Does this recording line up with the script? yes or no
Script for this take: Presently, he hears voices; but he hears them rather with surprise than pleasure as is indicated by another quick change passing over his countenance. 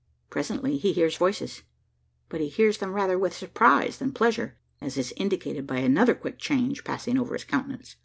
yes